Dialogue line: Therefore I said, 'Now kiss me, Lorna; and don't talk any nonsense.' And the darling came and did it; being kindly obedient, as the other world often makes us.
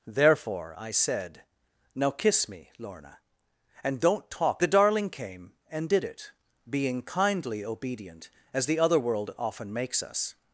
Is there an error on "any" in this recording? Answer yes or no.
yes